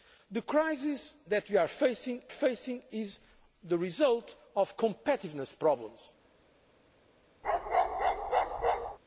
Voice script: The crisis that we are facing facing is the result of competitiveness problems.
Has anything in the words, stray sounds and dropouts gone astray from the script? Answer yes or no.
yes